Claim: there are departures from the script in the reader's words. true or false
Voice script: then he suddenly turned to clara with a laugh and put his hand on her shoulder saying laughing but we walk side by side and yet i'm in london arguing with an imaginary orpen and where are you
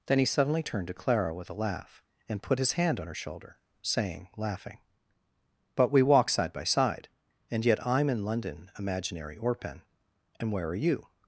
true